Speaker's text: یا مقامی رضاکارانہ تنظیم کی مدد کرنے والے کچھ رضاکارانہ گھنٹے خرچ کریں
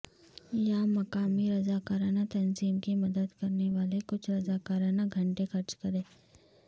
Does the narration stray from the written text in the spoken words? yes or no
no